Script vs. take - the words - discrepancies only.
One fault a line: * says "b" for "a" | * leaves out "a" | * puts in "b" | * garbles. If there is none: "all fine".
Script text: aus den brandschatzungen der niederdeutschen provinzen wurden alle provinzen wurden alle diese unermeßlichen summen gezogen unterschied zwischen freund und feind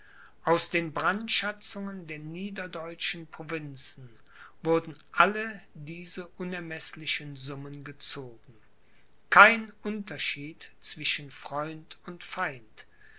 * leaves out "provinzen wurden alle"
* puts in "kein"